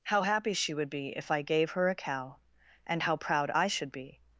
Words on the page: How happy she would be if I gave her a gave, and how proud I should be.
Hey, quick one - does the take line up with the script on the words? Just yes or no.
no